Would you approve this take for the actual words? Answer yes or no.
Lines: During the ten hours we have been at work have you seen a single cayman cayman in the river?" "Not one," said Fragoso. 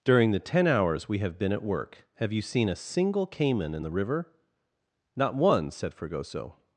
no